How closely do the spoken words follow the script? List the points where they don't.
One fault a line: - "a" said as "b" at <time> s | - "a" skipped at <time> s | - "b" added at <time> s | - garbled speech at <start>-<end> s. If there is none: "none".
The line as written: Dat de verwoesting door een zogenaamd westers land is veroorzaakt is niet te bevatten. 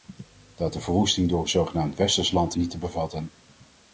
- "is veroorzaakt is" skipped at 2.6 s